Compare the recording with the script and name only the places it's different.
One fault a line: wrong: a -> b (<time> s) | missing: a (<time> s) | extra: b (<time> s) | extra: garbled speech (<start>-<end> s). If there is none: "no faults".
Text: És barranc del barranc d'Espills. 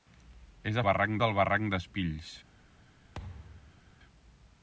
no faults